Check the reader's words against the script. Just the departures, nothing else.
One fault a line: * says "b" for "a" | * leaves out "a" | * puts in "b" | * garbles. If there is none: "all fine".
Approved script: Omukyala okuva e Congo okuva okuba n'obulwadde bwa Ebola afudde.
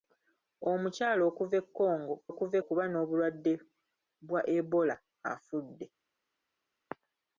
all fine